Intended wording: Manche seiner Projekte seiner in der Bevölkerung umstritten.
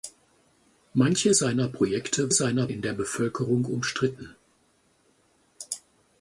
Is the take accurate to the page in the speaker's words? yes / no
yes